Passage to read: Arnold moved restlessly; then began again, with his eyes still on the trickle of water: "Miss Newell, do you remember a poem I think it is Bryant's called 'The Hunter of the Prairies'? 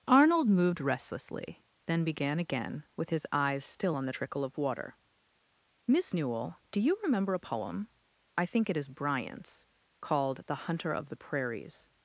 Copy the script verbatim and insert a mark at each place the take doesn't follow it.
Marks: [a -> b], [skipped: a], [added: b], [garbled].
Arnold moved restlessly; then began again, with his eyes still on the trickle of water: "Miss Newell, do you remember a poem I think it is Bryant's called 'The Hunter of the Prairies'?